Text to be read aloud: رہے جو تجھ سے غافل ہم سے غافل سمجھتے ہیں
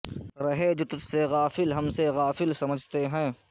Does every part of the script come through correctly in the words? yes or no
yes